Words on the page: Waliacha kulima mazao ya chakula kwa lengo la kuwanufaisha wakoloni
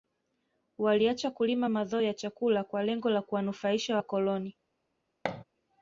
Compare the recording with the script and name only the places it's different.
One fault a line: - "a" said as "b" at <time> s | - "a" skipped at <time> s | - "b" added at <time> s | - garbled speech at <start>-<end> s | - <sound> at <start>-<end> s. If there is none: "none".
- thud at 5.2-5.4 s